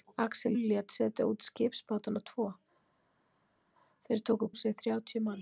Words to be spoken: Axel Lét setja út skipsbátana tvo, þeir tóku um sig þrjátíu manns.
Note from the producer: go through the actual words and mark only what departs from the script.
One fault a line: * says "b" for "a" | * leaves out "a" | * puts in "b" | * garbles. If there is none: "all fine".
all fine